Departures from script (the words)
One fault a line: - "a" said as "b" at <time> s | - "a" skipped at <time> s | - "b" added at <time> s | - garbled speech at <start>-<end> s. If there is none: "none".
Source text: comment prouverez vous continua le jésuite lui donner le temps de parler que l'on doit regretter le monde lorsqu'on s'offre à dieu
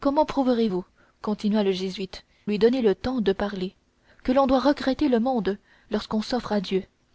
none